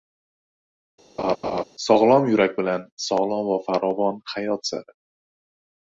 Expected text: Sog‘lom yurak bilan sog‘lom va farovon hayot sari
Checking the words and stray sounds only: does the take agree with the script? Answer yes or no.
no